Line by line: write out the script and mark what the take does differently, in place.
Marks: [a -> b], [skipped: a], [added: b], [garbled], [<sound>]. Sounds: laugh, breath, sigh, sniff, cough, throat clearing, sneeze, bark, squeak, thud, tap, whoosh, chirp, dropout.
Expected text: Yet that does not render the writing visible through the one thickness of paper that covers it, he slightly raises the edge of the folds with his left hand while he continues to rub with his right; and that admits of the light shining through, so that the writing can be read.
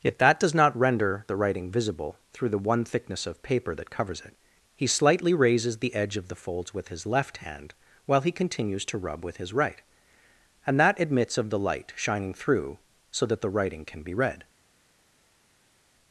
Yet that does not render the writing visible through the one thickness of paper that covers it, he slightly raises the edge of the folds with his left hand while he continues to rub with his right; and that admits of the light shining through, so that the writing can be read.